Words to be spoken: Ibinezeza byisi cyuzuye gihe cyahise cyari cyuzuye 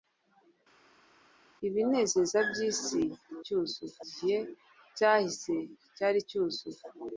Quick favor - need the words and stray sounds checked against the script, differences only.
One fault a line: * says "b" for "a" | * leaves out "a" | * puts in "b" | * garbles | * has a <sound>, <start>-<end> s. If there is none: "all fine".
all fine